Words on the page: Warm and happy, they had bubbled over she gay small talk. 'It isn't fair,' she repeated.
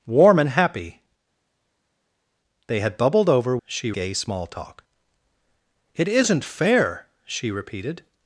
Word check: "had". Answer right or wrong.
right